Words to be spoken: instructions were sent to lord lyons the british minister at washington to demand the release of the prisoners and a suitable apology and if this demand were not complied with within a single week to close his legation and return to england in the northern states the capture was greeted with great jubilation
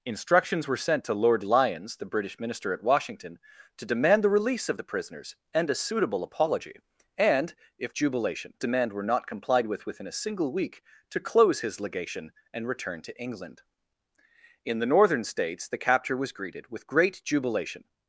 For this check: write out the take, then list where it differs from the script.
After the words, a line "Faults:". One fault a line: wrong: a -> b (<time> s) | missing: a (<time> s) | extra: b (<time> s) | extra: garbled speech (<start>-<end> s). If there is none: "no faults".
instructions were sent to lord lyons the british minister at washington to demand the release of the prisoners and a suitable apology and if jubilation demand were not complied with within a single week to close his legation and return to england in the northern states the capture was greeted with great jubilation
Faults:
wrong: this -> jubilation (7.9 s)